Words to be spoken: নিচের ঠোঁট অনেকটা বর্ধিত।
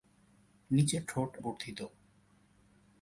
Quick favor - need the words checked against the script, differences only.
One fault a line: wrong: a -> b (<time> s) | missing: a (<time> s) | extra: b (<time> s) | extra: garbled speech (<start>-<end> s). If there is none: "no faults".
missing: অনেকটা (1.3 s)